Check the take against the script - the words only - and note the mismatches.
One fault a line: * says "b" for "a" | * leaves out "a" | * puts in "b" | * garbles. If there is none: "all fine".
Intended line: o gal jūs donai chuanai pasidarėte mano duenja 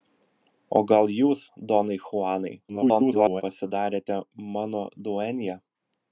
* garbles